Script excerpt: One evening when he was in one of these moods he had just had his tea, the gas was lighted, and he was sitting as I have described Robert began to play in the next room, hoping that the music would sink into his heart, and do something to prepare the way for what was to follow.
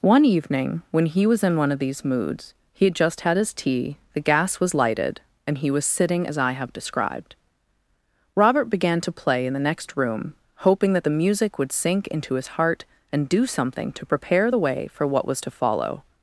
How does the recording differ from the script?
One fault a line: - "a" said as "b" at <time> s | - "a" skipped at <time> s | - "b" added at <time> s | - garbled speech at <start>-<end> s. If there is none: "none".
none